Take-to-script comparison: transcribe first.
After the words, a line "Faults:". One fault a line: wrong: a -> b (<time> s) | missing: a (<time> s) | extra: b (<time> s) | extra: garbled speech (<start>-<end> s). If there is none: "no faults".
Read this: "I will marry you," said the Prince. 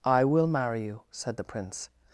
"I will marry you," said the Prince.
Faults:
no faults